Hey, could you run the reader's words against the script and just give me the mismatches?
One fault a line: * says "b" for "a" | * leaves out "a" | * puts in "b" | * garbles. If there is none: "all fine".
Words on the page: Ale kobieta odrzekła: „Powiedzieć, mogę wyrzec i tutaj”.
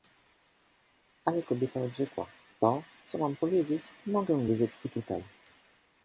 * puts in "To co mam"